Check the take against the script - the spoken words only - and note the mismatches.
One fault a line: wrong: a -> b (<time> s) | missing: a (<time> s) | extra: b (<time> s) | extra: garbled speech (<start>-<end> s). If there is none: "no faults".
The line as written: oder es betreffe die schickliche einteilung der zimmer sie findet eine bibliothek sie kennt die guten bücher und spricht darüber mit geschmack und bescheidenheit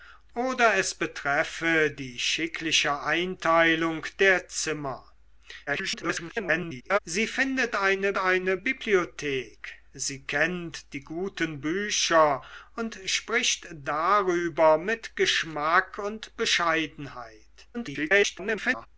extra: garbled speech (5.7-7.0 s)
extra: eine (8.2 s)
extra: garbled speech (17.7-18.9 s)